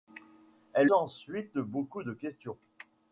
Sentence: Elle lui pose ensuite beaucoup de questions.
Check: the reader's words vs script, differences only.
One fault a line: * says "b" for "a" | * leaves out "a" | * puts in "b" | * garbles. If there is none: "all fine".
* leaves out "lui pose"